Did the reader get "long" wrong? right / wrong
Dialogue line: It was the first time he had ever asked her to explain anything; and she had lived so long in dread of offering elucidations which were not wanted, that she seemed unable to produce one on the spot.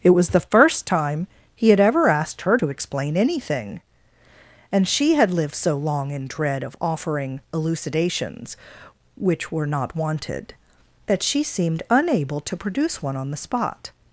right